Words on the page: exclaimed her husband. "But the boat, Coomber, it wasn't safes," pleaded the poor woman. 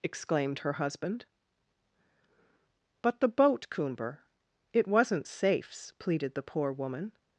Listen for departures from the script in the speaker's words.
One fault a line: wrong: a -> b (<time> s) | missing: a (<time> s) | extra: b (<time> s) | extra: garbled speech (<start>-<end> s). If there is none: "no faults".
no faults